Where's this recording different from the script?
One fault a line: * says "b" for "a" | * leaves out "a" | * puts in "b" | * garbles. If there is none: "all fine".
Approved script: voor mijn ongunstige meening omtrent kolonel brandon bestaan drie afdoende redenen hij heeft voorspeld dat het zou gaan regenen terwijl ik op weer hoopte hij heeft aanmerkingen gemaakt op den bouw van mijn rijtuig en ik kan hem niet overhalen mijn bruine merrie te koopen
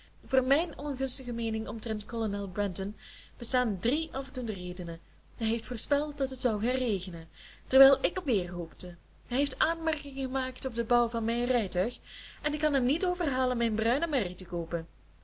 all fine